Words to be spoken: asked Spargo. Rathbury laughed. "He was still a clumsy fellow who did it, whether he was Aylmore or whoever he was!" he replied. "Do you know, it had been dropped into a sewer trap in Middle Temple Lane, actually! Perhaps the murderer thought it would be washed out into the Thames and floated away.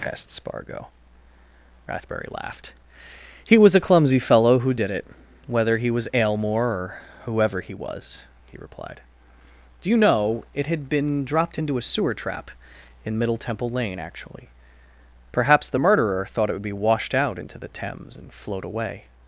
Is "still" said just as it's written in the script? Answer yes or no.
no